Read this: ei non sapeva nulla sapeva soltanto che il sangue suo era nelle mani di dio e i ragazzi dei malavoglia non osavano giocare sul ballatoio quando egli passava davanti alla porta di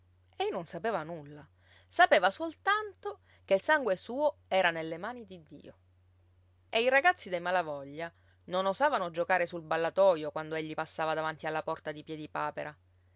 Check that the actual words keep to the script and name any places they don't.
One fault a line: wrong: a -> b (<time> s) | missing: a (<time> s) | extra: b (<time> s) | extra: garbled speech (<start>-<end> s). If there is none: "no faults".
no faults